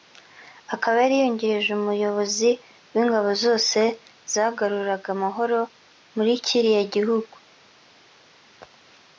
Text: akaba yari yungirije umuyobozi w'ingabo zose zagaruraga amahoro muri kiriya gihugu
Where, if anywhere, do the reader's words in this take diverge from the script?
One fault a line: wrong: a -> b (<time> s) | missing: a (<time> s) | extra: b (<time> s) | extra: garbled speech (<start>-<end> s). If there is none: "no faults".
no faults